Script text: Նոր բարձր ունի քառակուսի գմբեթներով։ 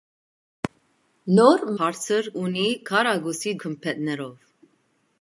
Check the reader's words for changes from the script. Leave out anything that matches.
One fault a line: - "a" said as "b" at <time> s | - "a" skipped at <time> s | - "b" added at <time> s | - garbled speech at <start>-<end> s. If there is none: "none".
none